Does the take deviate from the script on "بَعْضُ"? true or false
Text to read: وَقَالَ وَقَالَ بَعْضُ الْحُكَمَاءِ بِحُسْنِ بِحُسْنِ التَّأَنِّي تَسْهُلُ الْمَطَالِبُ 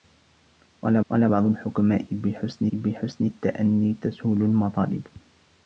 false